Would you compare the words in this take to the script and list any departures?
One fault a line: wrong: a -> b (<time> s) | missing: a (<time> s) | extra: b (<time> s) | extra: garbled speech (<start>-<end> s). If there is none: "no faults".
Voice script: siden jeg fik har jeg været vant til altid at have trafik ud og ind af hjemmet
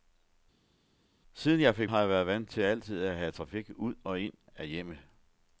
no faults